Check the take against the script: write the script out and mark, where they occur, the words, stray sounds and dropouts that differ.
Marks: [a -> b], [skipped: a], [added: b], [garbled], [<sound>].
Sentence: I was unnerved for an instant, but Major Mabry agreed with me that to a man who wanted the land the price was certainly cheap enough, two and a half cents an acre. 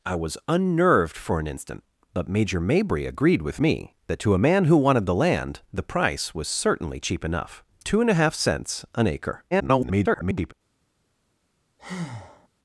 I was unnerved for an instant, but Major Mabry agreed with me that to a man who wanted the land the price was certainly cheap enough, two and a half cents an acre. [garbled] [breath]